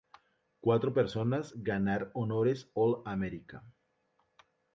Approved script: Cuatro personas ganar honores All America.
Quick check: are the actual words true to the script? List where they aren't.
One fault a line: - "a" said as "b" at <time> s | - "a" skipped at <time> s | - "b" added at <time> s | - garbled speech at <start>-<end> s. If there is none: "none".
none